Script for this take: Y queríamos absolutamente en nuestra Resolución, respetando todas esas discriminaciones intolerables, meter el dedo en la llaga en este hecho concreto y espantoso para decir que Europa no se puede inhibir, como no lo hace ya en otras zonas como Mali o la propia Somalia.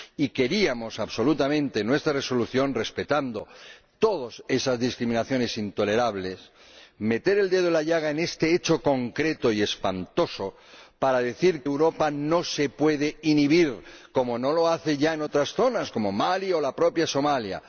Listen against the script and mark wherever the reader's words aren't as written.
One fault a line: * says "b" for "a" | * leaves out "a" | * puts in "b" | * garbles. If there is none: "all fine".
* leaves out "que"